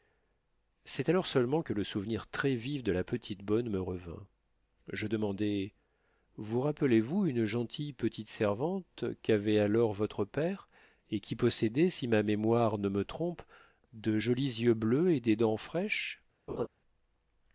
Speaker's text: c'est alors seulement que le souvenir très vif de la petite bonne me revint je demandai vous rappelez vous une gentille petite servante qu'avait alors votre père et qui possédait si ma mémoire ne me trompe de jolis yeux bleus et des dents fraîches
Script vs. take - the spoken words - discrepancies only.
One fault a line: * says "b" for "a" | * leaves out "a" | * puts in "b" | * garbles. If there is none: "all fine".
all fine